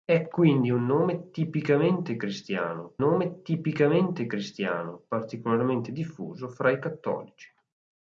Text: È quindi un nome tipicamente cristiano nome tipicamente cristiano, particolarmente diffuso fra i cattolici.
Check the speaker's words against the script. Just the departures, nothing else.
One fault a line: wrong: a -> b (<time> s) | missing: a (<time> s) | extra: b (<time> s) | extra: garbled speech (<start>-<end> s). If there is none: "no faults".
no faults